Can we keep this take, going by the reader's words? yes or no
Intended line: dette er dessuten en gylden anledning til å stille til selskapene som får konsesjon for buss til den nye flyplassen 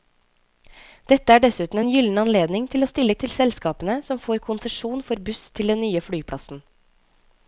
yes